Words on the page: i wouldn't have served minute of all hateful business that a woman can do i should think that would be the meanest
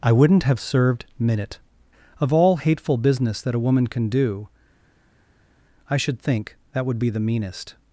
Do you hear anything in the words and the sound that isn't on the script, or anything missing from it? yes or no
no